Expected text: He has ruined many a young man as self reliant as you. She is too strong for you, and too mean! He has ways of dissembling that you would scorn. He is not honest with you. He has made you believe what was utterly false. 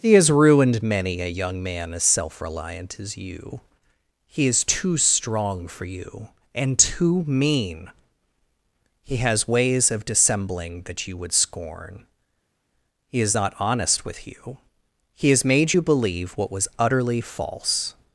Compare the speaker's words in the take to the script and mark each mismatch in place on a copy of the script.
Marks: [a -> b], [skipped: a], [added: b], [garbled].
He has ruined many a young man as self reliant as you. [She -> He] is too strong for you, and too mean! He has ways of dissembling that you would scorn. He is not honest with you. He has made you believe what was utterly false.